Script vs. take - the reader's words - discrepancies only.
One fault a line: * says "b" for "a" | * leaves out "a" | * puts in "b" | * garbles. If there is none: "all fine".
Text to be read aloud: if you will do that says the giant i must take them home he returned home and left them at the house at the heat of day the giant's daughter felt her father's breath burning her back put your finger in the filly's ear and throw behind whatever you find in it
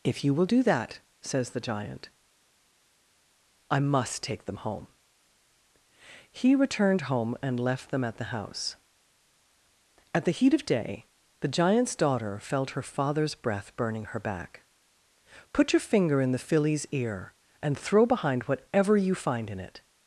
all fine